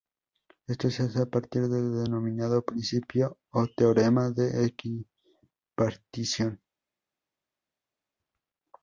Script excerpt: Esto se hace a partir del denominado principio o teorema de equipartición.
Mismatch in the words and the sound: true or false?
false